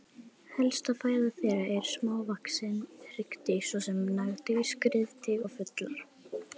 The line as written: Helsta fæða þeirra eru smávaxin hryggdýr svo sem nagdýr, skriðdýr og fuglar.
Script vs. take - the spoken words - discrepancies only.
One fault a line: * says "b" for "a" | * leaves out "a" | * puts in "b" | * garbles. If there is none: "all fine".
all fine